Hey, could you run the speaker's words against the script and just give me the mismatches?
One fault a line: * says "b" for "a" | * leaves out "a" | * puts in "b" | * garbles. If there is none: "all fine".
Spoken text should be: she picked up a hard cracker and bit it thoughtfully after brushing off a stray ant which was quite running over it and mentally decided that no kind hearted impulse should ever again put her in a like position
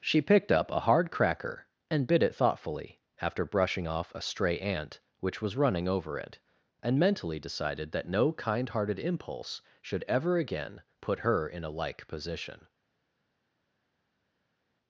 * leaves out "quite"